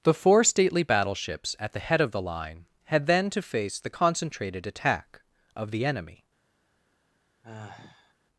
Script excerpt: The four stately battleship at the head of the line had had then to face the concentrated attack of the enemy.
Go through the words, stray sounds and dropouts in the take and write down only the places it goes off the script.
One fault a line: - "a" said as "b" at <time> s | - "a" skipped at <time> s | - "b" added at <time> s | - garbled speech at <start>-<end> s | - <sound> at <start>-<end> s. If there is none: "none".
- "battleship" said as "battleships" at 0.8 s
- "had" skipped at 3.0 s
- sigh at 7.4-8.1 s